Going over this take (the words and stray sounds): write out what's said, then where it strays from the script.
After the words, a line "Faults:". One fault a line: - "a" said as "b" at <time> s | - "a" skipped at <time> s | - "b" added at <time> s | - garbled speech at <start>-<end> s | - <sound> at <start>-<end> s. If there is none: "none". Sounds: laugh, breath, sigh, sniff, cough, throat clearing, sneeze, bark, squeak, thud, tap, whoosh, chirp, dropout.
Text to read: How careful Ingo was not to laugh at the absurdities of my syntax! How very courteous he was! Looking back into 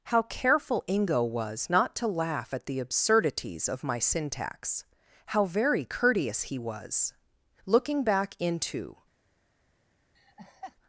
How careful Ingo was not to laugh at the absurdities of my syntax! How very courteous he was! Looking back into
Faults:
- laugh at 10.1-10.8 s